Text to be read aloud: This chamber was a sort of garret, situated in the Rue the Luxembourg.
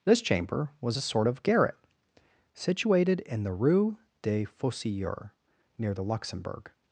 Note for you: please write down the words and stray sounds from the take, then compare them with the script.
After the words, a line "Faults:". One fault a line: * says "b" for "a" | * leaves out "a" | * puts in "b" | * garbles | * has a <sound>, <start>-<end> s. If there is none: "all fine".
This chamber was a sort of garret, situated in the Rue des Fossoyeurs, near the Luxembourg.
Faults:
* puts in "des Fossoyeurs near"